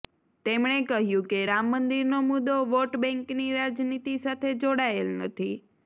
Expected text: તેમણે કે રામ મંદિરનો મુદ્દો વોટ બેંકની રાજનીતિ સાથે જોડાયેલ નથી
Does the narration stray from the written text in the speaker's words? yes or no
yes